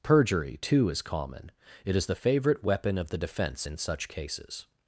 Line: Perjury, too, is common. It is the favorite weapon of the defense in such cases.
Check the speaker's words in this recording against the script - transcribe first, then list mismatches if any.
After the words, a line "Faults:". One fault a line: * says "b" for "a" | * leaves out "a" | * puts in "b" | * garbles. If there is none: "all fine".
Perjury, too, is common. It is the favorite weapon of the defense in such cases.
Faults:
all fine